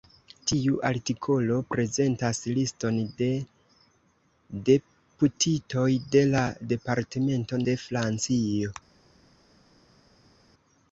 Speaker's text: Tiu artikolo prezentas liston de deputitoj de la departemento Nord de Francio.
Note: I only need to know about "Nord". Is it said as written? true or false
false